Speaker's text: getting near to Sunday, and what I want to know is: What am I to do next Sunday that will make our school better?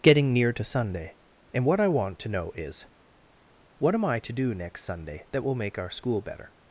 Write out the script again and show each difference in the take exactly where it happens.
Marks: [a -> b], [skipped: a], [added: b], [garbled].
getting near to Sunday, and what I want to know is: What am I to do next Sunday that will make our school better?